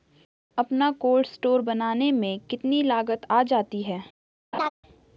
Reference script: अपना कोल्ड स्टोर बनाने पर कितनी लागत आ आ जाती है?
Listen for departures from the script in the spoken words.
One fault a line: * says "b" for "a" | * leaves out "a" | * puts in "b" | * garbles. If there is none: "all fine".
* says "में" for "पर"
* leaves out "आ"